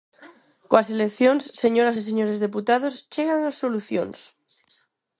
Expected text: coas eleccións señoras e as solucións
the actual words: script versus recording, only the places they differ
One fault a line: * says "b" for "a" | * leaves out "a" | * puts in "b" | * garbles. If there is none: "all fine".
* puts in "señores deputados chegan"